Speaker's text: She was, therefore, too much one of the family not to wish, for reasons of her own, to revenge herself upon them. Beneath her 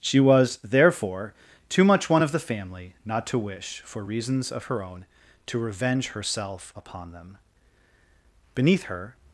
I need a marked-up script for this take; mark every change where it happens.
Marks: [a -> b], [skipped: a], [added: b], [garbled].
She was, therefore, too much one of the family not to wish, for reasons of her own, to revenge herself upon them. Beneath her